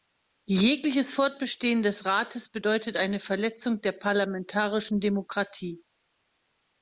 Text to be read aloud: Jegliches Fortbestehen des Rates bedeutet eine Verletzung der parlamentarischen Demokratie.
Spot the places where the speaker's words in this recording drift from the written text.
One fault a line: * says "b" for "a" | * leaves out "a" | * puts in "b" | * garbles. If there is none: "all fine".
all fine